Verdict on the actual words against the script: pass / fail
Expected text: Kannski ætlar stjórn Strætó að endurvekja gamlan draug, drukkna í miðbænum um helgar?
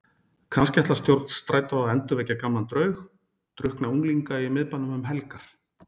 fail